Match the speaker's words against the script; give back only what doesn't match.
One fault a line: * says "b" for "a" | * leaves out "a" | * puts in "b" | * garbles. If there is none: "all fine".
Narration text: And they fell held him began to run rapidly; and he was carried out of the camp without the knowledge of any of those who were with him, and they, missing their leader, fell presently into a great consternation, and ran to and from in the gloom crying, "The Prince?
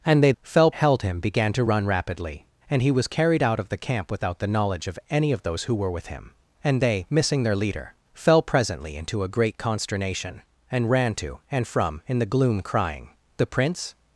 all fine